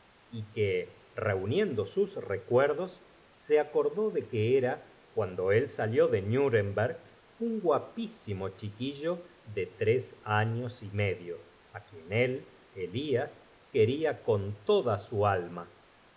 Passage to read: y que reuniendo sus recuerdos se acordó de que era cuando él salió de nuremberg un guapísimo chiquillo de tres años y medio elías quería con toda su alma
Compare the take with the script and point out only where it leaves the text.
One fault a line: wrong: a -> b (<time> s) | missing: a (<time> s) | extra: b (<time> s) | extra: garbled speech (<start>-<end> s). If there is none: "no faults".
extra: á quien él (11.7 s)